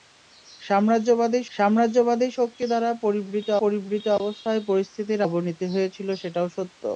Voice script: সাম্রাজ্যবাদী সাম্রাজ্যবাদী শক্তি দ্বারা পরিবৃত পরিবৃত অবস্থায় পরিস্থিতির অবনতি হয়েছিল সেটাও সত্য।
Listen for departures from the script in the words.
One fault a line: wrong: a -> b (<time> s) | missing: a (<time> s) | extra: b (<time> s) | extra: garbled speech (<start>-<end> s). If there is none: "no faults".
no faults